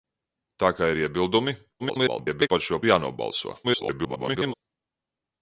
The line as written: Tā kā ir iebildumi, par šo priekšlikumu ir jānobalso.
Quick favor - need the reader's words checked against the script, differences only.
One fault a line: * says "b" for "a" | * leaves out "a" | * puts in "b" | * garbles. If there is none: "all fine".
* garbles
* leaves out "priekšlikumu"
* garbles